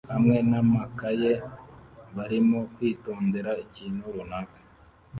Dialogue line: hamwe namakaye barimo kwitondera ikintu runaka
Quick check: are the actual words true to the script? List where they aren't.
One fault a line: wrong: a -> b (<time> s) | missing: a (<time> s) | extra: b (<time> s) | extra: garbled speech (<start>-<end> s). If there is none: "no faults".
no faults